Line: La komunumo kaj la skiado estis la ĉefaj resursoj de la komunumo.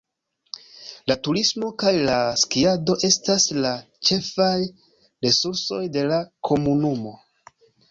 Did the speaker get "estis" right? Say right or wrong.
wrong